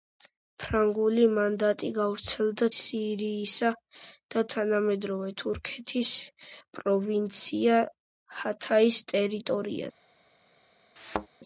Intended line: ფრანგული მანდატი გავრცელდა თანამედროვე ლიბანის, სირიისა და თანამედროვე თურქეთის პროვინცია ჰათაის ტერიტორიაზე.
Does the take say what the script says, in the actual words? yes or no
no